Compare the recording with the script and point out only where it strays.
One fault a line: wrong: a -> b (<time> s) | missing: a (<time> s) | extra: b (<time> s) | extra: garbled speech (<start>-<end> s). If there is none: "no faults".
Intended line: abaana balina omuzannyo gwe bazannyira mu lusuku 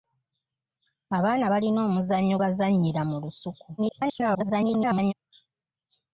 missing: gwe (2.4 s)
extra: garbled speech (3.8-5.1 s)